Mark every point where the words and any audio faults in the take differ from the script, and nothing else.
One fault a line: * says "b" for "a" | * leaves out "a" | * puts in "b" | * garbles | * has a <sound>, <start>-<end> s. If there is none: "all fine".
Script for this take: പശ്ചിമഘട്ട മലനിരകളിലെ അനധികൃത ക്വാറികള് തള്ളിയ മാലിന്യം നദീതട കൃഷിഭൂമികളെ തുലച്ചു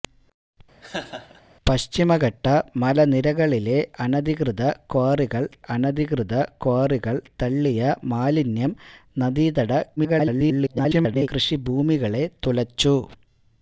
* has a laugh, 0.8-1.4 s
* puts in "അനധികൃത ക്വാറികള്"
* garbles